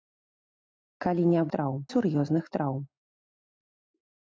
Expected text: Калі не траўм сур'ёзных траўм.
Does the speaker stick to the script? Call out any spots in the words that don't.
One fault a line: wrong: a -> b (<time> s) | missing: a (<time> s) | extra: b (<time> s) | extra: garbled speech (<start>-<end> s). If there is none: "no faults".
no faults